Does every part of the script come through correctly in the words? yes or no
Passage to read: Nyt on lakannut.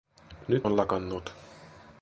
yes